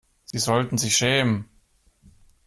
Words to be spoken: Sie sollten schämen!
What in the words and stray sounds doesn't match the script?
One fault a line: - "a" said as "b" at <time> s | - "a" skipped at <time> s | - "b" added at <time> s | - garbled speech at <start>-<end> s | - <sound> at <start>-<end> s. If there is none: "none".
- dropout at 0.3-0.3 s
- "sich" added at 0.8 s